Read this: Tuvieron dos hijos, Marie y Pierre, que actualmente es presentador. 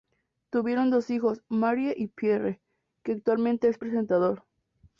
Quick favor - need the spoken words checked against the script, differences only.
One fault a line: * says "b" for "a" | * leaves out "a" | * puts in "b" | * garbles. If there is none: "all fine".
all fine